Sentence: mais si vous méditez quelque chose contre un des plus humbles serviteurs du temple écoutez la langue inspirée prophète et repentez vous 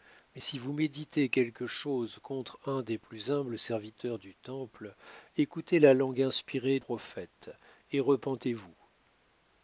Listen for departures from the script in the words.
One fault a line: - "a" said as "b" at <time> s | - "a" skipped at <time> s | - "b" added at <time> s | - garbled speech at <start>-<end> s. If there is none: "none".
none